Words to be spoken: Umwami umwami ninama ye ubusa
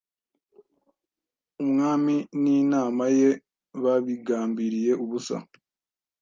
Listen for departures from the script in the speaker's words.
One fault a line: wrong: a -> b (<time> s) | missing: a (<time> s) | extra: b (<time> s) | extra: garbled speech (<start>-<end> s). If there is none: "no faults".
missing: umwami (2.1 s)
extra: babigambiriye (3.8 s)